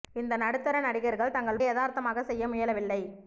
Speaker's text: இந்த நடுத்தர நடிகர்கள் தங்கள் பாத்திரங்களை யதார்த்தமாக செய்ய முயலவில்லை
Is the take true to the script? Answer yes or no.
no